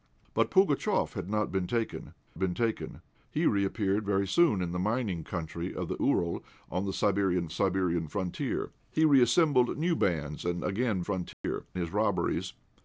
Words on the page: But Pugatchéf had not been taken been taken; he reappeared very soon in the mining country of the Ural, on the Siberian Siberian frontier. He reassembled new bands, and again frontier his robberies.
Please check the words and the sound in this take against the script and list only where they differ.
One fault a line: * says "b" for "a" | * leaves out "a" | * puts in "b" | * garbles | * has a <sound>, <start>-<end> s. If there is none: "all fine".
* has a dropout, 11.3-11.4 s